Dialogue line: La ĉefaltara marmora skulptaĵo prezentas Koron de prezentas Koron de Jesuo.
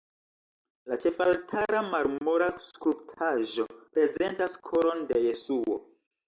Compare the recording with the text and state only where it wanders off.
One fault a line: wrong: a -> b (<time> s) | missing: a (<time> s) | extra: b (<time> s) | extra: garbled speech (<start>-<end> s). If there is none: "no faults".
missing: prezentas Koron de (5.3 s)